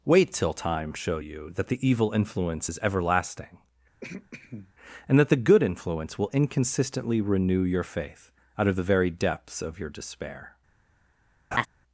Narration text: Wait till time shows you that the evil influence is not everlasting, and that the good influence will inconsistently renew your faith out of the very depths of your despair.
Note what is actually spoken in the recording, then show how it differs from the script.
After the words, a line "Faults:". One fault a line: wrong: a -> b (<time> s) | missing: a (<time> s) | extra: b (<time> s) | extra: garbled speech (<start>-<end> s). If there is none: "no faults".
Wait till time show you that the evil influence is everlasting, and that the good influence will inconsistently renew your faith out of the very depths of your despair.
Faults:
wrong: shows -> show (0.9 s)
missing: not (2.8 s)